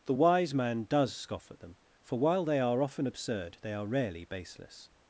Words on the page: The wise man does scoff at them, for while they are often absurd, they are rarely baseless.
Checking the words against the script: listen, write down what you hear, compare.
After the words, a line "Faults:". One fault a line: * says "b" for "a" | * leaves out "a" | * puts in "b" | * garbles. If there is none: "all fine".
The wise man does scoff at them, for while they are often absurd, they are rarely baseless.
Faults:
all fine